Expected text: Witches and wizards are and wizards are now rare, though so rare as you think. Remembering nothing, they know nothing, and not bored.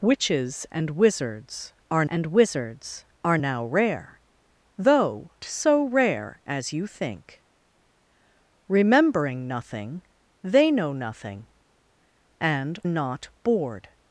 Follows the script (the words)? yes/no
yes